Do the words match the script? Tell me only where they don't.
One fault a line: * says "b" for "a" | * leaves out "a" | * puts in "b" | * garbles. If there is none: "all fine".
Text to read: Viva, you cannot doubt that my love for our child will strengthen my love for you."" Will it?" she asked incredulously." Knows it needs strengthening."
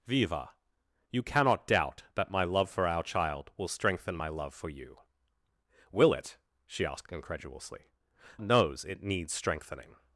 all fine